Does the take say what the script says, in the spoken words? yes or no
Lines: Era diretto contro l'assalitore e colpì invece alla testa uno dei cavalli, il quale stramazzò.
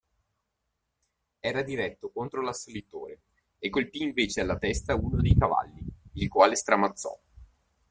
yes